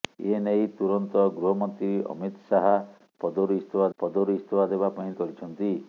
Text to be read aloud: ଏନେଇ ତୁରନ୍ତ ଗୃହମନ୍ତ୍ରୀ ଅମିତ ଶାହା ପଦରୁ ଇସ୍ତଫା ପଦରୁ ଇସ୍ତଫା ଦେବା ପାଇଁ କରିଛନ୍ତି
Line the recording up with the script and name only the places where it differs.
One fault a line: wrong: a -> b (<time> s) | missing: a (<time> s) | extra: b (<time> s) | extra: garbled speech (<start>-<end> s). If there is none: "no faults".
no faults